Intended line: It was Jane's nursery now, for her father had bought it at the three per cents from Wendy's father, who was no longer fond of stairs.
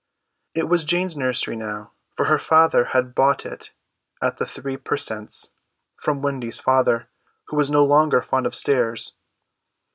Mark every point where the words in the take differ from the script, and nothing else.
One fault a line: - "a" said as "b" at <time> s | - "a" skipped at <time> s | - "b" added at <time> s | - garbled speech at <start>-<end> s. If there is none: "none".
none